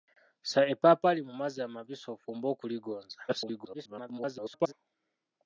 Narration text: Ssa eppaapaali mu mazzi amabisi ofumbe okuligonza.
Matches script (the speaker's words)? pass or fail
fail